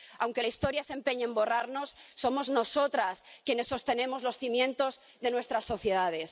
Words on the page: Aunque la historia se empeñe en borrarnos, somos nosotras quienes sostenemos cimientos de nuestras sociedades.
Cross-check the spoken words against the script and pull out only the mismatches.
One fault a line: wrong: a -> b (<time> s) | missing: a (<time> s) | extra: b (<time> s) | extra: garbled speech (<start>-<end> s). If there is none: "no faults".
extra: los (4.2 s)